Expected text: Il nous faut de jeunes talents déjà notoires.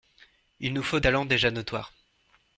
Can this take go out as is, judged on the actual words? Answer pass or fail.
fail